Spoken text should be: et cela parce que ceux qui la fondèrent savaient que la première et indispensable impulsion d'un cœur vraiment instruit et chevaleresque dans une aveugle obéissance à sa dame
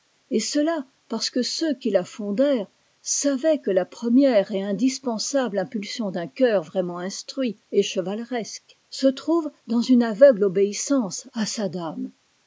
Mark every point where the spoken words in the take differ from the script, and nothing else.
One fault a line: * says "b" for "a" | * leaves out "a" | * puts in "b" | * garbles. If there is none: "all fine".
* puts in "se trouve"